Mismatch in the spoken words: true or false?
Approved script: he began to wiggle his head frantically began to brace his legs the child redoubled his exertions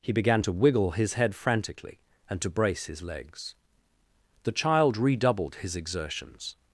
true